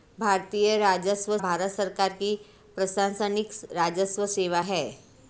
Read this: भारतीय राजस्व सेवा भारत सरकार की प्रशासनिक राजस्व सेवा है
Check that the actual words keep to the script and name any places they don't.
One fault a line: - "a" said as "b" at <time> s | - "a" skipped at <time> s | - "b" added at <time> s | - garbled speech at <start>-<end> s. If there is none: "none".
- "सेवा" skipped at 1.4 s